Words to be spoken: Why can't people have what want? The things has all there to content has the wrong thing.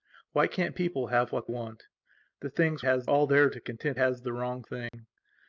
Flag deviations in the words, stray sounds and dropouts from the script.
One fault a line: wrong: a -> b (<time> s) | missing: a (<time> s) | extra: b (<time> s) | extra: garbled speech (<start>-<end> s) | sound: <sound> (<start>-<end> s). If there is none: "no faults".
sound: dropout (4.9-4.9 s)